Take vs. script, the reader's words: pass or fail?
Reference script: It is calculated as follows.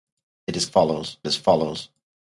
fail